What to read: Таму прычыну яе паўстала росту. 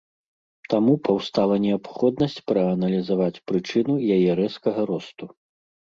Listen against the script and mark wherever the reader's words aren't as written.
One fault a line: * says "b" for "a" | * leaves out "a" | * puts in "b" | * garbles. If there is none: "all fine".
* puts in "паўстала неабходнасць прааналізаваць"
* says "рэзкага" for "паўстала"